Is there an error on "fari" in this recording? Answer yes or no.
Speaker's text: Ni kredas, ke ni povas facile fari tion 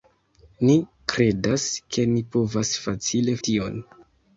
yes